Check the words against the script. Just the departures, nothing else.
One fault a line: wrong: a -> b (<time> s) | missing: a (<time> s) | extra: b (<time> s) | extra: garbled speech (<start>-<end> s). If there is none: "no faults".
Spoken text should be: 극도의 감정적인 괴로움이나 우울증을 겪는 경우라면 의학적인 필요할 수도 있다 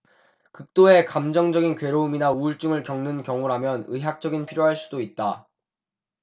no faults